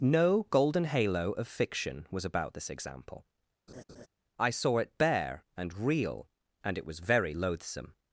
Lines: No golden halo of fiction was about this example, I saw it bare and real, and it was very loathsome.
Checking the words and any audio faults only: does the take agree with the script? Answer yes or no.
no